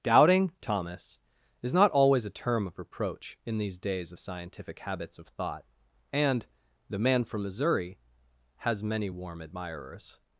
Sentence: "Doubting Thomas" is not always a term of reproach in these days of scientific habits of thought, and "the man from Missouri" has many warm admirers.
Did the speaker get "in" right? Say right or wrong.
right